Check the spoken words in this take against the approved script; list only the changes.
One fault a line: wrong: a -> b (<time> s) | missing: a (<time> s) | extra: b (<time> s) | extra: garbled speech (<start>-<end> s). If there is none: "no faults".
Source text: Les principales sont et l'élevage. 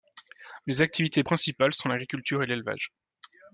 extra: activités (0.8 s)
extra: l'agriculture (1.9 s)